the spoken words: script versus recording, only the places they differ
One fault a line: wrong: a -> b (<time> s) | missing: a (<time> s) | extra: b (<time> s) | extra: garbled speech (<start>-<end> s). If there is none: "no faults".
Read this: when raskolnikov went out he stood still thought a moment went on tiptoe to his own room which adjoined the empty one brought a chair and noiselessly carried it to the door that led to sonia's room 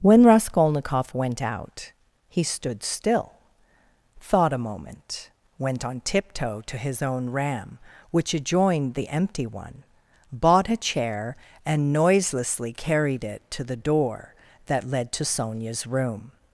wrong: room -> ram (7.3 s)
wrong: brought -> bought (10.3 s)